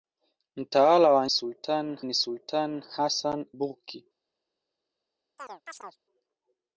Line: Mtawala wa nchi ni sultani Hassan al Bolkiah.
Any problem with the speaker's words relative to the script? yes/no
yes